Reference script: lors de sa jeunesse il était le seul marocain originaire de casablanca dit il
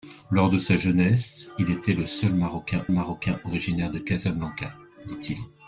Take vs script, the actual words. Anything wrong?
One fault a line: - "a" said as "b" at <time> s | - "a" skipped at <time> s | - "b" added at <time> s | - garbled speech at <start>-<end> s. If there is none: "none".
- "marocain" added at 2.9 s